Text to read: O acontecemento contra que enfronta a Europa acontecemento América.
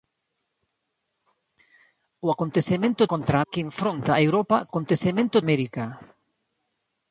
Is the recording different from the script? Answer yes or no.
no